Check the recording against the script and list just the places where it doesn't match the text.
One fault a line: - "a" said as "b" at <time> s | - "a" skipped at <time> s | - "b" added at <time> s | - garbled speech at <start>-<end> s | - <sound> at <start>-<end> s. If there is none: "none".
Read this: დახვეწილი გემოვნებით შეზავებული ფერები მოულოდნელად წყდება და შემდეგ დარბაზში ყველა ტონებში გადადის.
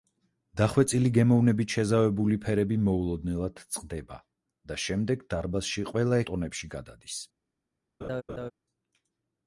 - laugh at 8.0-8.5 s